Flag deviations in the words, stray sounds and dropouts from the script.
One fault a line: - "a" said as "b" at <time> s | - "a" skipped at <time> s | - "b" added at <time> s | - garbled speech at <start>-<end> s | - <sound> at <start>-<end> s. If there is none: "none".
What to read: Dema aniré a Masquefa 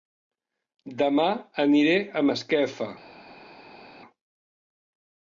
none